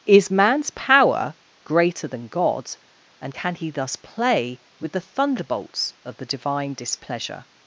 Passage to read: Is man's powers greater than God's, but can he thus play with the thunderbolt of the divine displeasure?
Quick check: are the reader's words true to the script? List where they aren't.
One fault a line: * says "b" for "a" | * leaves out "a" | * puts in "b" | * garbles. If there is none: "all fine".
* says "power" for "powers"
* says "and" for "but"
* says "thunderbolts" for "thunderbolt"